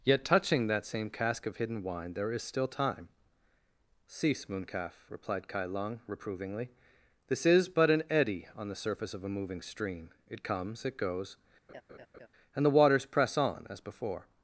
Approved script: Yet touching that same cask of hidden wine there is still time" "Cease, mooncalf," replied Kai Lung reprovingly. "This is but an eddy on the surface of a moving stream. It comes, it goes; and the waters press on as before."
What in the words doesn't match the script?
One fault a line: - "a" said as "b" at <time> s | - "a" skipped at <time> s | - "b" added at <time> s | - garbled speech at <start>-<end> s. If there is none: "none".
none